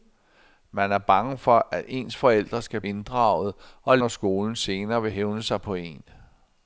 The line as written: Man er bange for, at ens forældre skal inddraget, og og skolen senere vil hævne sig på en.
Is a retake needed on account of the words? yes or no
no